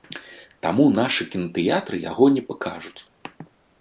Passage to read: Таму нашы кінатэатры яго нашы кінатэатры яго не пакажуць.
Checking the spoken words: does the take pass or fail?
fail